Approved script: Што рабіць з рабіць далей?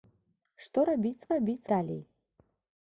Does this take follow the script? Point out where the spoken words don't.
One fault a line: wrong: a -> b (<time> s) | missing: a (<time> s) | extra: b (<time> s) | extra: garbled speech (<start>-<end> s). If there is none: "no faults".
no faults